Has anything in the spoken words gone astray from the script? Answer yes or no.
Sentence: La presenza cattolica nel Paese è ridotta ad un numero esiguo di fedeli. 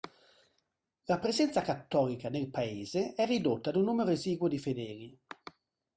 no